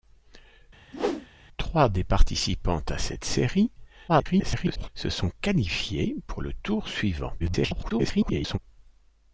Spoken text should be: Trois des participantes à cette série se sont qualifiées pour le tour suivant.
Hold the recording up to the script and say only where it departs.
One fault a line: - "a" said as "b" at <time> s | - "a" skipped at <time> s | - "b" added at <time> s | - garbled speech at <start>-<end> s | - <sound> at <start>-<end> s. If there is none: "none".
- whoosh at 0.9-1.3 s
- garbled speech at 4.1-4.9 s
- garbled speech at 7.4-8.6 s